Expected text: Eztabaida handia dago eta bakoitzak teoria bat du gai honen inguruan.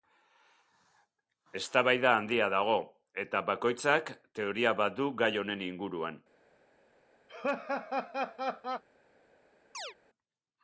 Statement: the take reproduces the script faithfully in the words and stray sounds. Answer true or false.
false